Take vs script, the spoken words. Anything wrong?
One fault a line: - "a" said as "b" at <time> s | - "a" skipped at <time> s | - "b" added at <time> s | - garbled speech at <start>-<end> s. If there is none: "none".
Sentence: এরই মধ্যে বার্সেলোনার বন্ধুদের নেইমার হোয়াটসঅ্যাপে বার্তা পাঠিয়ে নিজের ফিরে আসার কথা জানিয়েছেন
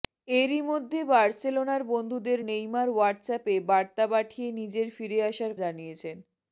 - "কথা" skipped at 5.5 s